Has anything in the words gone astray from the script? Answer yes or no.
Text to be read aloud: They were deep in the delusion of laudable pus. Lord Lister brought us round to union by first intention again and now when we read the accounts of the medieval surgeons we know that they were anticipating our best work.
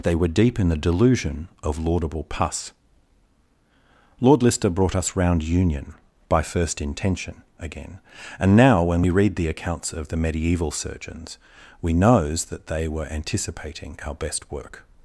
yes